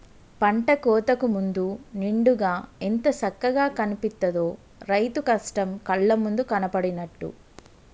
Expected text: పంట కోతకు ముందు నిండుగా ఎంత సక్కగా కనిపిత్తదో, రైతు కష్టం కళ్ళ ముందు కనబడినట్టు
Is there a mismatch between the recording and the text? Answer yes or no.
no